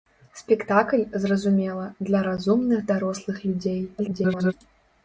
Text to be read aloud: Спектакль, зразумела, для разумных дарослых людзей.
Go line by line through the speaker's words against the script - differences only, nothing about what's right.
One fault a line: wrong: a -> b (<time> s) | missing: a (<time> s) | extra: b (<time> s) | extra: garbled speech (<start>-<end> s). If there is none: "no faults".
extra: garbled speech (4.0-4.5 s)